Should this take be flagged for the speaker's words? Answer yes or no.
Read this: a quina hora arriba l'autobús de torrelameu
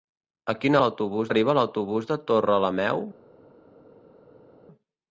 yes